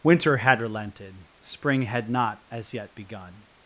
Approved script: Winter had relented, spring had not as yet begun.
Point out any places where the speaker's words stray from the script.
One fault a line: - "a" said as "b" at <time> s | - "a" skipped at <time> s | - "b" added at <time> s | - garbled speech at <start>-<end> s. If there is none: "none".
none